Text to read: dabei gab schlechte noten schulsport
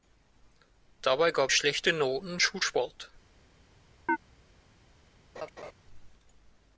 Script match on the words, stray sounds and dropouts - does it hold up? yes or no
no